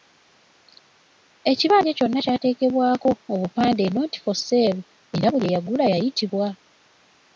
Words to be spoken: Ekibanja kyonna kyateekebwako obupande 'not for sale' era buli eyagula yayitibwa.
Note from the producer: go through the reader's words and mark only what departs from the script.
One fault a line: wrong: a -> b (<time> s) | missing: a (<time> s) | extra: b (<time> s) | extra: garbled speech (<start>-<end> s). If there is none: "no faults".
no faults